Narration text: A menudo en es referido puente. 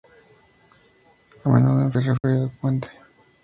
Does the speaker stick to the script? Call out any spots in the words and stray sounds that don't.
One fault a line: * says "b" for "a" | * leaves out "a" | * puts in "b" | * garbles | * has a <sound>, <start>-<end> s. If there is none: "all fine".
* has a dropout, 2.2-2.2 s